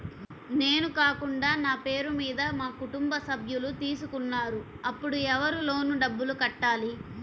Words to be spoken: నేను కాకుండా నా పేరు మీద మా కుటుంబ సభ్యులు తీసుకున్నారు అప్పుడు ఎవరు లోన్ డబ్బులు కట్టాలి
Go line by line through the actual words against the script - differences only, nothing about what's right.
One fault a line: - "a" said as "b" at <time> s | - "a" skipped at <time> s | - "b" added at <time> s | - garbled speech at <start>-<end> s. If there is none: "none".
none